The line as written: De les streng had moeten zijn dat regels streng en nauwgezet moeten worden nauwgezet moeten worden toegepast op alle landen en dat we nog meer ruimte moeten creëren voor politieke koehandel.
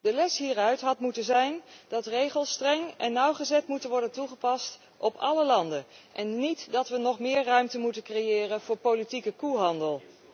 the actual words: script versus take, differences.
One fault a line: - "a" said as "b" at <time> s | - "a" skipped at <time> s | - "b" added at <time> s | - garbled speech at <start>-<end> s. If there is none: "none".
- "streng" said as "hieruit" at 0.4 s
- "nauwgezet moeten worden" skipped at 4.1 s
- "niet" added at 6.4 s